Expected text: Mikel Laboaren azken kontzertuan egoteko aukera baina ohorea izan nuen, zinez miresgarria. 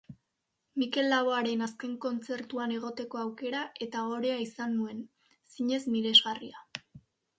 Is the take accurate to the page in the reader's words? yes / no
no